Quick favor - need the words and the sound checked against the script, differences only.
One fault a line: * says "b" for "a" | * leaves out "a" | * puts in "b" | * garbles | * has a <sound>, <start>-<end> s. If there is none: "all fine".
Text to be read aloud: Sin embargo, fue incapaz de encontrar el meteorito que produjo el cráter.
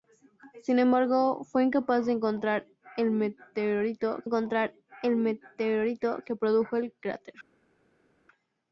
* puts in "encontrar el meteorito"